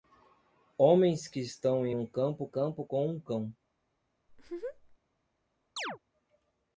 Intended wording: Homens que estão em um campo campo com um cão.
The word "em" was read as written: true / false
true